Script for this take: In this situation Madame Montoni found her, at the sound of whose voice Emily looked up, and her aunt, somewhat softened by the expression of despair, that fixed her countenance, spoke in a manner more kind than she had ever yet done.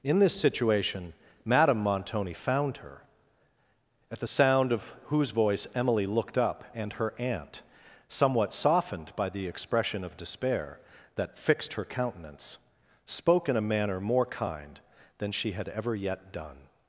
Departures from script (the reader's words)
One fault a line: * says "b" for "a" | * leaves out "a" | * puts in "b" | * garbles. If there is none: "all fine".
all fine